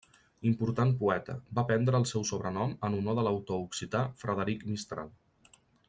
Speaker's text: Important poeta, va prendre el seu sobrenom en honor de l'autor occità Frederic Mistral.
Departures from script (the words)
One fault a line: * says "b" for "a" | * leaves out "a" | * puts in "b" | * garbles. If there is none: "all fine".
all fine